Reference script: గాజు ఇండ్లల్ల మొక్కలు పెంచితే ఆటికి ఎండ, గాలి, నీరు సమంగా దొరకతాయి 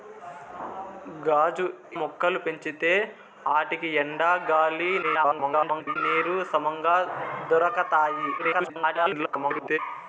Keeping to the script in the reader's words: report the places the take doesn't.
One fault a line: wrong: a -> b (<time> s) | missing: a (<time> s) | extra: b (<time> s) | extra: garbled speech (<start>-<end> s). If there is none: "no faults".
missing: ఇండ్లల్ల (1.6 s)
extra: garbled speech (5.0-6.0 s)
extra: garbled speech (8.4-9.8 s)